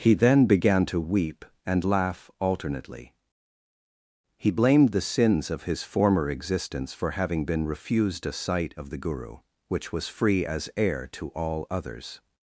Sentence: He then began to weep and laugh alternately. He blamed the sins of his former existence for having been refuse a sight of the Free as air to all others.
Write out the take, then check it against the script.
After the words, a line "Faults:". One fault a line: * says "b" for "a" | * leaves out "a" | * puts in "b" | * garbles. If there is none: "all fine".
He then began to weep and laugh alternately. He blamed the sins of his former existence for having been refused a sight of the Guru, which was free as air to all others.
Faults:
* says "refused" for "refuse"
* puts in "Guru which was"